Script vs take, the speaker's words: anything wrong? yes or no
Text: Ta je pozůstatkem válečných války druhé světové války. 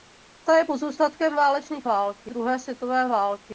no